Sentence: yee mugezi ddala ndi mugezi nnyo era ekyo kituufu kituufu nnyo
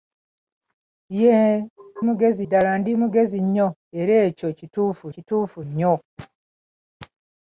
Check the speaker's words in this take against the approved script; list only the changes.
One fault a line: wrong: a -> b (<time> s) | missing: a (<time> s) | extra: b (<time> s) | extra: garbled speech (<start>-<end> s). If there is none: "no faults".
no faults